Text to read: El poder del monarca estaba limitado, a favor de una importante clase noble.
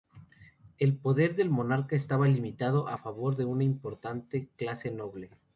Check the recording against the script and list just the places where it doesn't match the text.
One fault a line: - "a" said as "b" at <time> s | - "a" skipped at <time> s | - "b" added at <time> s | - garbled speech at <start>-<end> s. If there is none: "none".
none